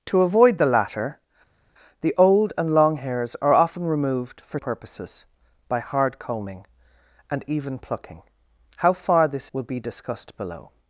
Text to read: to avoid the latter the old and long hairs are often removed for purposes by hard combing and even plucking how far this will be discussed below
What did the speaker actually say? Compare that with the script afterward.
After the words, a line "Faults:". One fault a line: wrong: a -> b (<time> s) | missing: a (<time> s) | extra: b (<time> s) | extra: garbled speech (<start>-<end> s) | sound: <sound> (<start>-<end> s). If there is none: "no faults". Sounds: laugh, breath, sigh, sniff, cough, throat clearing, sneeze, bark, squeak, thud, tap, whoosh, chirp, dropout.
to avoid the latter the old and long hairs are often removed for purposes by hard combing and even plucking how far this will be discussed below
Faults:
no faults